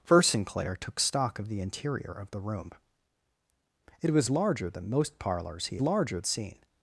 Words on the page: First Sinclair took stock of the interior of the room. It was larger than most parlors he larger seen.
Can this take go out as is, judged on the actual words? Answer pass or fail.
pass